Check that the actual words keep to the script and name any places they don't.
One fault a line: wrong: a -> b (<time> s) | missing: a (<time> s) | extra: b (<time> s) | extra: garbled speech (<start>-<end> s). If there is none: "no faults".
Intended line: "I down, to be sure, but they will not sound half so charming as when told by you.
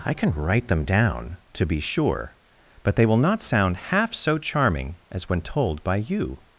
extra: can write them (0.1 s)